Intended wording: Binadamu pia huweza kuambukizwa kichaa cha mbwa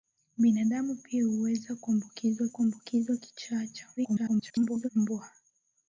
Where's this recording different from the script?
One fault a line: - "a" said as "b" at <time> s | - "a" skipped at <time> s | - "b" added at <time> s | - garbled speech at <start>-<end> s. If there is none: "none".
- "kuambukizwa" added at 2.5 s
- garbled speech at 4.0-4.9 s